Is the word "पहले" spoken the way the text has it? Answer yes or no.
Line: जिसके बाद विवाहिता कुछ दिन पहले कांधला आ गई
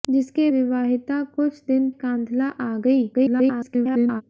no